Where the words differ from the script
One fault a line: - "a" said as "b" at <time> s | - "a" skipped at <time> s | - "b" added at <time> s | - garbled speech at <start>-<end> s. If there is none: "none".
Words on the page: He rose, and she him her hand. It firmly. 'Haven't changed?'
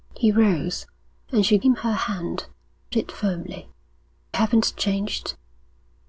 none